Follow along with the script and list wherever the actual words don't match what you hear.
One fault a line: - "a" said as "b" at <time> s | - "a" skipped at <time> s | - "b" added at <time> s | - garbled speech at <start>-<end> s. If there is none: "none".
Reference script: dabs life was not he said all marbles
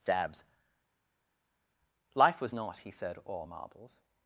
none